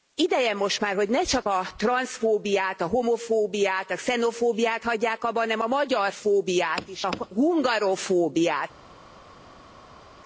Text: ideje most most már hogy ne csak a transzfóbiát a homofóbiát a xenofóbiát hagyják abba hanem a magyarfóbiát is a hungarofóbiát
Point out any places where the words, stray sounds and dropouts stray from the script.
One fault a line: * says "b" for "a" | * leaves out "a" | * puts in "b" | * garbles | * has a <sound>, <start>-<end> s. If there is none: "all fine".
* leaves out "most"